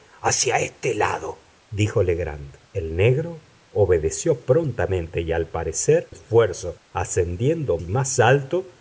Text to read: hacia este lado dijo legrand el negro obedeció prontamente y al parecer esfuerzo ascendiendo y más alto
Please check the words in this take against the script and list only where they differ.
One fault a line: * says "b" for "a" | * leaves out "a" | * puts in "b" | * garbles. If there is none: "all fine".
all fine